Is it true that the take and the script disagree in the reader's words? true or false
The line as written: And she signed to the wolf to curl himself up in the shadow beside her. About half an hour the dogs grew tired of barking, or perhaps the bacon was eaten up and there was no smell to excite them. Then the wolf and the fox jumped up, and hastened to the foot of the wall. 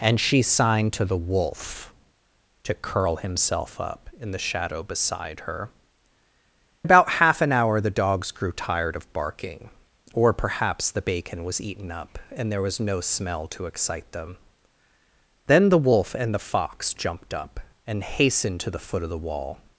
false